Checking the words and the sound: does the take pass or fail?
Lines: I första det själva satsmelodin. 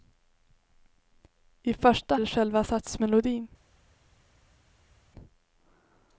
pass